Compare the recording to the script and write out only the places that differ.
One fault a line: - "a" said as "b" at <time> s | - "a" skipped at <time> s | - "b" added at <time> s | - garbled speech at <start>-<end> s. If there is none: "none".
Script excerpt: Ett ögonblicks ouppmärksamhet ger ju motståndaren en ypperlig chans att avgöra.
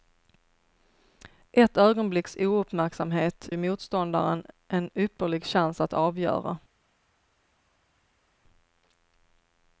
- "ger" skipped at 3.5 s